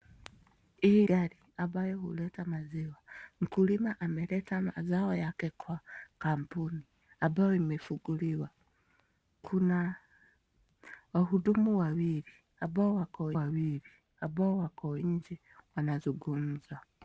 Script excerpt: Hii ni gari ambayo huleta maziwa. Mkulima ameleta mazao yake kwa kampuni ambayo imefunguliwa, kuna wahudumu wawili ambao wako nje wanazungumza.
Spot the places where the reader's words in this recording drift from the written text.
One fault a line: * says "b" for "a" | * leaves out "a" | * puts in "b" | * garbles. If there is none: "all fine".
* leaves out "ni"
* puts in "wawili ambao wako"